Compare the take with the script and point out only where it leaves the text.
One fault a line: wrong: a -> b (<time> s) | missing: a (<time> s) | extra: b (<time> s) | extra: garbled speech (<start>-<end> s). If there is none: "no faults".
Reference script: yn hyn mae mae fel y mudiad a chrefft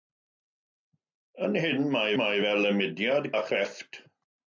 no faults